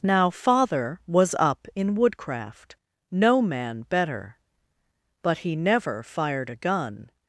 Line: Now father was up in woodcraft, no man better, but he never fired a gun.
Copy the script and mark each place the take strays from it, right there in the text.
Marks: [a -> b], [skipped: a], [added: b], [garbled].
Now father was up in woodcraft, no man better, but he never fired a gun.